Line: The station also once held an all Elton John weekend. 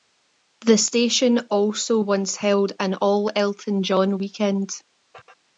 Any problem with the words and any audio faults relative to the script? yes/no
no